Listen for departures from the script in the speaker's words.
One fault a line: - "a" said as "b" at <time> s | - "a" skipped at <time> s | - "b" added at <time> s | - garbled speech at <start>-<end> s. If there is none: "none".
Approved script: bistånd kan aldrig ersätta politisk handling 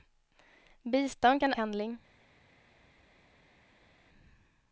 - "aldrig ersätta politisk" skipped at 1.5 s